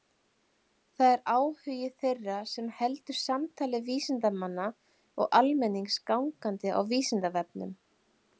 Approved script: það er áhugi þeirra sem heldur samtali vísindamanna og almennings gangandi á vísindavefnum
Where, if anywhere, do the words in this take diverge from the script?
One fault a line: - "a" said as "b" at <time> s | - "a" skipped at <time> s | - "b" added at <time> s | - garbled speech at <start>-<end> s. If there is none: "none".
none